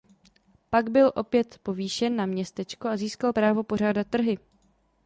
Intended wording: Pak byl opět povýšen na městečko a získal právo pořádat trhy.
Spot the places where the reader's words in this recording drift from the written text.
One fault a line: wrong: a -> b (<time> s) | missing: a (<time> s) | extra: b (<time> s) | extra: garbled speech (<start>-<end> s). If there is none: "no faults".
no faults